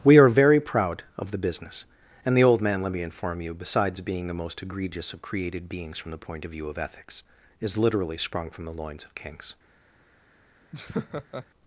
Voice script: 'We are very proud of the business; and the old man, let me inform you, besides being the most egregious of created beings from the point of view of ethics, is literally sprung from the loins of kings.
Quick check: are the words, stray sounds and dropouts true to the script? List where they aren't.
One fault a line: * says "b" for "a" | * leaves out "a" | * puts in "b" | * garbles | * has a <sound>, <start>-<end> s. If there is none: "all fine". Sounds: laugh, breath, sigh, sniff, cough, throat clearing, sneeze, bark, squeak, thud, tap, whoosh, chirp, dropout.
* has a laugh, 10.7-11.5 s